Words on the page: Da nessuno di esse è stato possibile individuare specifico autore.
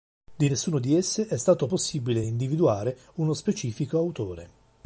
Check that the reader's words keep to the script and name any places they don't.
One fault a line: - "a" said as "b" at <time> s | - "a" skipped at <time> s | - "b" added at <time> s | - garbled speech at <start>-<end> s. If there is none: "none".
- "Da" said as "Di" at 0.3 s
- "uno" added at 3.1 s